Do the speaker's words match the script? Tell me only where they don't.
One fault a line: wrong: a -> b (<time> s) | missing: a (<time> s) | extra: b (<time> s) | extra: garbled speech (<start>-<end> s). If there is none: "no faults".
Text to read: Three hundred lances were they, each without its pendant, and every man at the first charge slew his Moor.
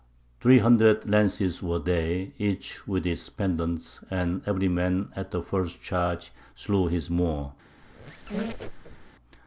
wrong: without -> with (2.9 s)